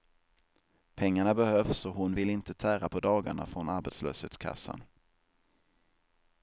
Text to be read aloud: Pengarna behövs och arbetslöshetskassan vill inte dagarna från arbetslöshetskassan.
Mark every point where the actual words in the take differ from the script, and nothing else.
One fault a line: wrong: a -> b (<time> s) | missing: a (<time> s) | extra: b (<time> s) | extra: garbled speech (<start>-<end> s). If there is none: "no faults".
wrong: arbetslöshetskassan -> hon (1.9 s)
extra: tära på (2.5 s)